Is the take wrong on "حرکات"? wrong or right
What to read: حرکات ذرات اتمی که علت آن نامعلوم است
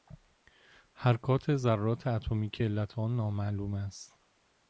right